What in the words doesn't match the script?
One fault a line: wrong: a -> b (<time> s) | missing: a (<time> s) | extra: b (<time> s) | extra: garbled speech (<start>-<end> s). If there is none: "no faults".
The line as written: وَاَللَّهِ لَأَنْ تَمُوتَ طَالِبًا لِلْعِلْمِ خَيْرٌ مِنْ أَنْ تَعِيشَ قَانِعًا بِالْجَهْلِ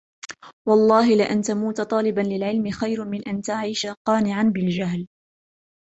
no faults